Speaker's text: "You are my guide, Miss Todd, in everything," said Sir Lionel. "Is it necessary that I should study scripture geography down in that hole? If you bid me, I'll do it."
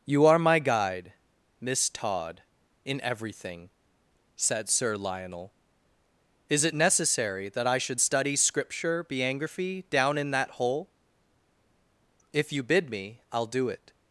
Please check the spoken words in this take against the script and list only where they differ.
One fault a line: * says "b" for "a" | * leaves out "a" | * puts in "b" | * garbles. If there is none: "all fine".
* says "biography" for "geography"